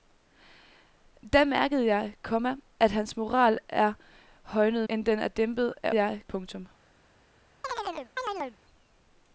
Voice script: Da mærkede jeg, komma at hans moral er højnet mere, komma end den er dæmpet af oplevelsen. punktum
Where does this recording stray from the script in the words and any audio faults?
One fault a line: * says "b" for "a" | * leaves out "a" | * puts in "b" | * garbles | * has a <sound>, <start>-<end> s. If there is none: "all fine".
* leaves out "mere komma"
* says "jeg" for "oplevelsen"
* has a chirp, 7.6-8.6 s